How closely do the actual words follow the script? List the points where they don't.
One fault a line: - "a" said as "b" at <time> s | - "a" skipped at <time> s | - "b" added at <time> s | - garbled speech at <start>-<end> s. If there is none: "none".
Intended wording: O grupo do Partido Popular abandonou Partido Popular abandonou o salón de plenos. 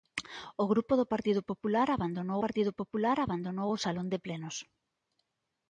none